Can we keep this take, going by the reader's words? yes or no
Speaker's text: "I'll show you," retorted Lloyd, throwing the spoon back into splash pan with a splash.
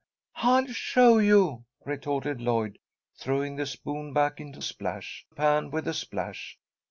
yes